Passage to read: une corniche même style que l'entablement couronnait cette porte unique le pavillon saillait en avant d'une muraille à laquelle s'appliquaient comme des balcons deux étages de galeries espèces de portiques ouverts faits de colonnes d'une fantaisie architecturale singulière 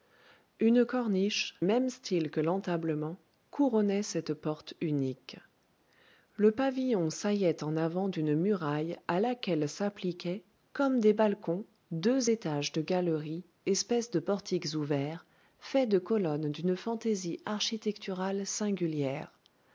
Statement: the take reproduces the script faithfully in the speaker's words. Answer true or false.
true